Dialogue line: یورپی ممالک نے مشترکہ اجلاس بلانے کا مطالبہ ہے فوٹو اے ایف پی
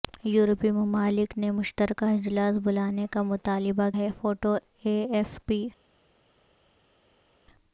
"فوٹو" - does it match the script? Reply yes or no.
yes